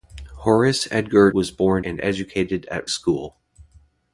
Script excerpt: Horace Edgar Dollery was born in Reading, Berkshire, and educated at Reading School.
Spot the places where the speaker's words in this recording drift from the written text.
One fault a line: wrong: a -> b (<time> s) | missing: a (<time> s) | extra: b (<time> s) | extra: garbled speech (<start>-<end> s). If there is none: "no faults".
missing: Dollery (1.3 s)
missing: in Reading Berkshire (1.8 s)
missing: Reading (2.9 s)